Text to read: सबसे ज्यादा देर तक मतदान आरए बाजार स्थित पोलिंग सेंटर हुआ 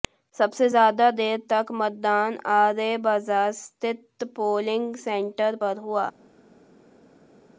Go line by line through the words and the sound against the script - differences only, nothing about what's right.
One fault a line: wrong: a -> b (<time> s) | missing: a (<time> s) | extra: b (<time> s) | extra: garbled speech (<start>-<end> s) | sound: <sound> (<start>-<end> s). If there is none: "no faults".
extra: पर (5.6 s)